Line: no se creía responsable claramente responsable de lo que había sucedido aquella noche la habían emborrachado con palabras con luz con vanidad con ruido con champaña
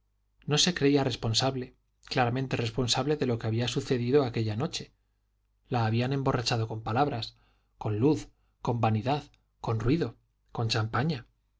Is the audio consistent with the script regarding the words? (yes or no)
yes